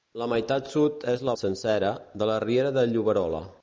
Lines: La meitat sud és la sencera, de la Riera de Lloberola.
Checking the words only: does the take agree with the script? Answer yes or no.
yes